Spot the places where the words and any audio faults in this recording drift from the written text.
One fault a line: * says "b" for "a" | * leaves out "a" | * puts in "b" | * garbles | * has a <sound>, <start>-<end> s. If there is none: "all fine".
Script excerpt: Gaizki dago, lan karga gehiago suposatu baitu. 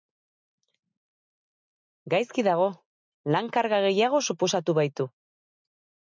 all fine